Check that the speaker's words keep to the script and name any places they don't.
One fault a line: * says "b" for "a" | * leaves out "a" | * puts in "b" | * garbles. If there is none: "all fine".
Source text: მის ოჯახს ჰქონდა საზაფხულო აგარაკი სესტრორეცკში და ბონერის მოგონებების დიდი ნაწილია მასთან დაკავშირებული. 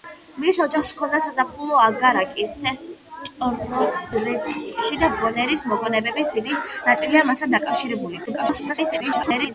* garbles